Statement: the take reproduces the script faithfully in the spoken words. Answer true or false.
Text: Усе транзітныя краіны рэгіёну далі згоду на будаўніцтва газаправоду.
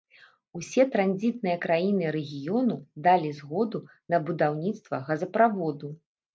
true